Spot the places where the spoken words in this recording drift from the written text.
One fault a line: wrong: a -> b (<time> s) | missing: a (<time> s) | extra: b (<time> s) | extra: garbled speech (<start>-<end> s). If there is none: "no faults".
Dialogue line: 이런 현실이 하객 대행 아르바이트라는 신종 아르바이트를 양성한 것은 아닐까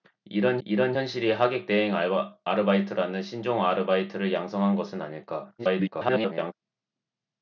extra: 이런 (0.7 s)
extra: garbled speech (5.6-6.5 s)